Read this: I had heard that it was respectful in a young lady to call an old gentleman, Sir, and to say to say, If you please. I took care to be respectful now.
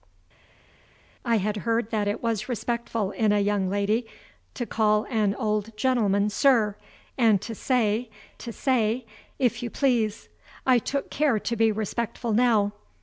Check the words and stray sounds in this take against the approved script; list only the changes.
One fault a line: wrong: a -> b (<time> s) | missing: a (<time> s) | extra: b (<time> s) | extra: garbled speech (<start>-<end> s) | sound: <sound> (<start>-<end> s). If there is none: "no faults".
no faults